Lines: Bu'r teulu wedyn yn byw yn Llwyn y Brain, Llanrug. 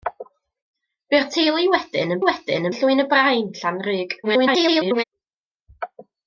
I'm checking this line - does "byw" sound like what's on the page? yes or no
no